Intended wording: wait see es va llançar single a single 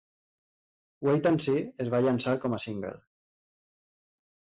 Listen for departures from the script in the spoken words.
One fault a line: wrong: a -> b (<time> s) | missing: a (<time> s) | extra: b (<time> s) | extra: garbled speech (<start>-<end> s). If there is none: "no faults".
extra: and (1.3 s)
wrong: single -> com (2.5 s)